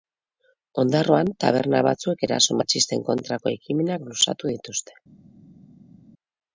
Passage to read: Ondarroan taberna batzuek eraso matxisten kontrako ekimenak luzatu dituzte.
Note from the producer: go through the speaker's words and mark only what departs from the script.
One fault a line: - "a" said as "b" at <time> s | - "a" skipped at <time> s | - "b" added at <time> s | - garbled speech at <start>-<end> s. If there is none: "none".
none